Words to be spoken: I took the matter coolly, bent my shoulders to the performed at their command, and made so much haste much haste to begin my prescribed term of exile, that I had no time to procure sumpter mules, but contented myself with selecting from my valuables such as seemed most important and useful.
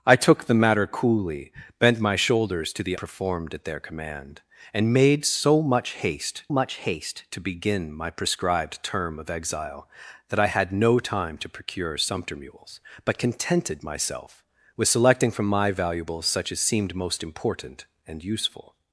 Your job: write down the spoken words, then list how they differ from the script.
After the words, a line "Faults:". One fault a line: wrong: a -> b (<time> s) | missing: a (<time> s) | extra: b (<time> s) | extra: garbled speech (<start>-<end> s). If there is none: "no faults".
I took the matter coolly, bent my shoulders to the performed at their command, and made so much haste much haste to begin my prescribed term of exile, that I had no time to procure sumpter mules, but contented myself with selecting from my valuables such as seemed most important and useful.
Faults:
no faults